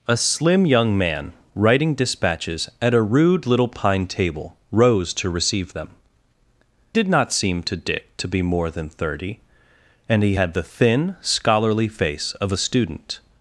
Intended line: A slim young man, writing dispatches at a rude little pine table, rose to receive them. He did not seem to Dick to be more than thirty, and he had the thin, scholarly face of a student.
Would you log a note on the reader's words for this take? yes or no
yes